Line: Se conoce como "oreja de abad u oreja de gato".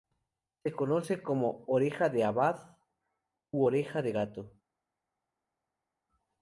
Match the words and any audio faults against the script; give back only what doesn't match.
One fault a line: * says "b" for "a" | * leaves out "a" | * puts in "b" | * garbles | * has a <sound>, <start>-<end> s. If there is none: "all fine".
all fine